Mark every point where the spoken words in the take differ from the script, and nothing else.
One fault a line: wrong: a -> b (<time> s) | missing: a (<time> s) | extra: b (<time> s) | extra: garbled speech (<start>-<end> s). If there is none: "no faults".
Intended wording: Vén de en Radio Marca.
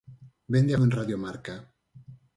no faults